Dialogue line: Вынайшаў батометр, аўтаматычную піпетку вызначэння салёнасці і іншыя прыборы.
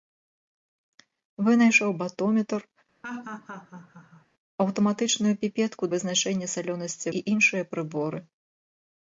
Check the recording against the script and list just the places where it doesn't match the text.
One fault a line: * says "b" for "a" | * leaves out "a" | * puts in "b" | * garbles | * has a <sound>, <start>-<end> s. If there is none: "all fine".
* has a laugh, 3.0-4.3 s